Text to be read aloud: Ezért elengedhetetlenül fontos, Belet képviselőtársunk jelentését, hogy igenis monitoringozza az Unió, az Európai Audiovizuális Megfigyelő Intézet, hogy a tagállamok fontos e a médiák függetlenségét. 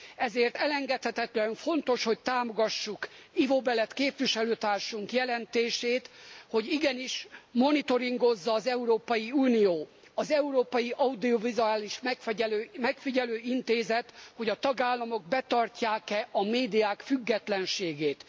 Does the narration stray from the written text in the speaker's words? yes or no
yes